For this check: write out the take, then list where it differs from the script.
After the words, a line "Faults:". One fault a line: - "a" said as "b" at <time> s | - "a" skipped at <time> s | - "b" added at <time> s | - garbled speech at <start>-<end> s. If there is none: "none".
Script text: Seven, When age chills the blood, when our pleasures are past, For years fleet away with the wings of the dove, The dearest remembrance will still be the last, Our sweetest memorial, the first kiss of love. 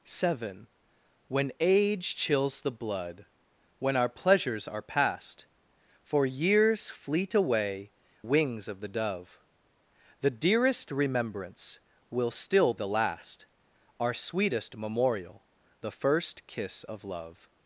Seven, When age chills the blood, when our pleasures are past, For years fleet away wings of the dove, The dearest remembrance will still the last, Our sweetest memorial, the first kiss of love.
Faults:
- "with the" skipped at 7.9 s
- "be" skipped at 12.7 s